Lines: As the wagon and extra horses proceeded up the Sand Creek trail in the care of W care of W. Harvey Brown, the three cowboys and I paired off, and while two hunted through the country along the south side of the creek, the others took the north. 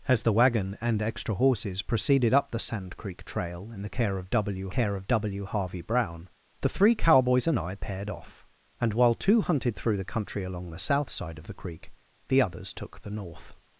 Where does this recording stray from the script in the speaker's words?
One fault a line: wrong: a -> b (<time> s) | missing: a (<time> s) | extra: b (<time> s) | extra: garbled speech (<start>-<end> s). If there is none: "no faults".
no faults